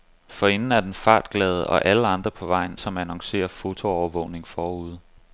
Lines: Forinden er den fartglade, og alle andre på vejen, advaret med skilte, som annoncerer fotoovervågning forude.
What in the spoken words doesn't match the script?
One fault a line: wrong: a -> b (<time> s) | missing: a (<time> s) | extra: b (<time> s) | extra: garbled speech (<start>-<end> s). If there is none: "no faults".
missing: advaret med skilte (2.8 s)